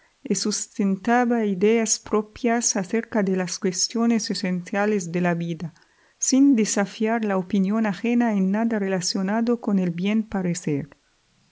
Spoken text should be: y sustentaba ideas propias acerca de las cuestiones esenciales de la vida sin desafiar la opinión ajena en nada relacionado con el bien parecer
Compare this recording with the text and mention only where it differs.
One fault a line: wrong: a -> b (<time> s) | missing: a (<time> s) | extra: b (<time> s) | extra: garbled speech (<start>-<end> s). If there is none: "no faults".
no faults